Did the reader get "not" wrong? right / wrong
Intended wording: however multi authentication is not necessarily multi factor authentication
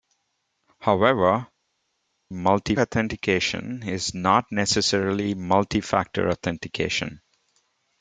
right